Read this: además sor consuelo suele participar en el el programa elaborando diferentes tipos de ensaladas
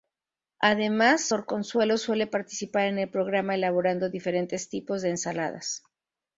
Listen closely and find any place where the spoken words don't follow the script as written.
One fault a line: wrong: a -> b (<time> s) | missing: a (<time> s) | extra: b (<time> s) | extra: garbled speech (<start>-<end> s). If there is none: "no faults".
missing: el (3.1 s)